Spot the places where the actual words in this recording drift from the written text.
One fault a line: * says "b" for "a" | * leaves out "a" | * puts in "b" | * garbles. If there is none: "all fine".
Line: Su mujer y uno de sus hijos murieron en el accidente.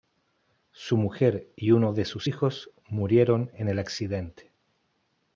all fine